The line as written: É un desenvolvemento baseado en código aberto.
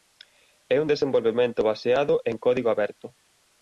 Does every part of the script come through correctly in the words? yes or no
yes